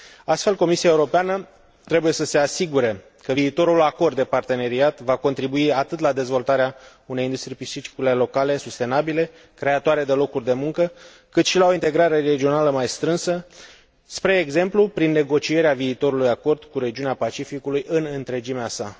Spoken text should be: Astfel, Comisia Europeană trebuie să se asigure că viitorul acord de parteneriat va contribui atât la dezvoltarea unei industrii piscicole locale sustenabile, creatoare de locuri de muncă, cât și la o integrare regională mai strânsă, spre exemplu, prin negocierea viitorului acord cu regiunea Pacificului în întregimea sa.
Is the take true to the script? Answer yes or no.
yes